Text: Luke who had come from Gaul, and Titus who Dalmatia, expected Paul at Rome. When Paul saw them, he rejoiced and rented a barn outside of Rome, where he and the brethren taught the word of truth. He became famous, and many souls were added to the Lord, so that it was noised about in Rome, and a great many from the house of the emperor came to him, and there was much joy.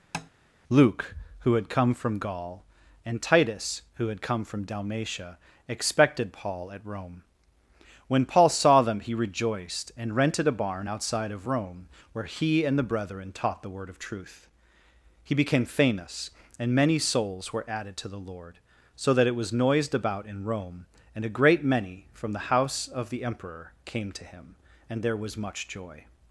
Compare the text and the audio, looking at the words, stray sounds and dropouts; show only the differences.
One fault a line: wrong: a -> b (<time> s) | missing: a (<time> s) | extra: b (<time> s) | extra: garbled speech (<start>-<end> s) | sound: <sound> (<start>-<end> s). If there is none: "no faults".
sound: tap (0.1-0.3 s)
extra: had come from (4.1 s)